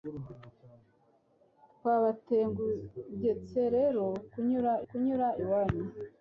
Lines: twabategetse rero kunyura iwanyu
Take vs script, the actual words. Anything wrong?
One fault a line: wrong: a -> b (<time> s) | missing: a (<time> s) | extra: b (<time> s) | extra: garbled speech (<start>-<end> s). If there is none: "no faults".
extra: kunyura (4.9 s)